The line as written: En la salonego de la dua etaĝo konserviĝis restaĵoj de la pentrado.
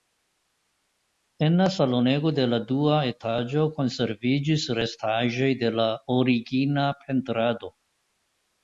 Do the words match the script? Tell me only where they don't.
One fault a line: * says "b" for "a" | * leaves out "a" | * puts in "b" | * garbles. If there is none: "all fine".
* puts in "origina"